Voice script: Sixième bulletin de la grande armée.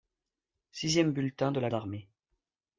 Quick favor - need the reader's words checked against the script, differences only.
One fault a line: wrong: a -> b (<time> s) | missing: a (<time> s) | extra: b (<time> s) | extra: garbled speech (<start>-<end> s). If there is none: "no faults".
missing: grande (1.7 s)